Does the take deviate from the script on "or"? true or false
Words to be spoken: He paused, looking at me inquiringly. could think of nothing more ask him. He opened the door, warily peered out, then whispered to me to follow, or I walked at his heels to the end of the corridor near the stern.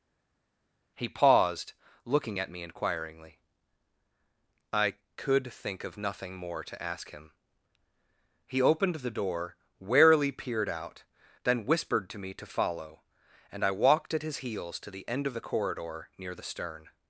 true